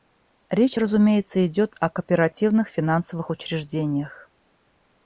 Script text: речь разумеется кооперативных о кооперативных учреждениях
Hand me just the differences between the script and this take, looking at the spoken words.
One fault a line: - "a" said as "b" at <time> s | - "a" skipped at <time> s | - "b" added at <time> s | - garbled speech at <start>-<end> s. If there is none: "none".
- "кооперативных" said as "идет" at 1.4 s
- "финансовых" added at 2.7 s